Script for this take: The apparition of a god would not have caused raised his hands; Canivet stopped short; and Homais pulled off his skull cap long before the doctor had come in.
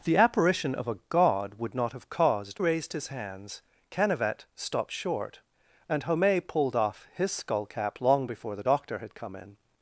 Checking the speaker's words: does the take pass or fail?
pass